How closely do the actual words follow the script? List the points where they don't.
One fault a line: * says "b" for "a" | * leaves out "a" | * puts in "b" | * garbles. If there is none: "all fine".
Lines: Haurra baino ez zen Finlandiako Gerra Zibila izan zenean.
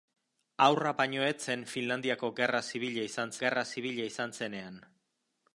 * puts in "Gerra Zibila izan"